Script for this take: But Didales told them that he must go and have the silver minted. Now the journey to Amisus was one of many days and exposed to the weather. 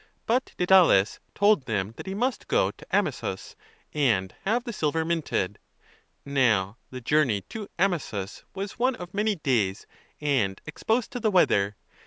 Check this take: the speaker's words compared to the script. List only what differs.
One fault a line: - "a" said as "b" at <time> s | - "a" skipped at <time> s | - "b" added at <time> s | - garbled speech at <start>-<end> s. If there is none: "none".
- "to Amisus" added at 2.7 s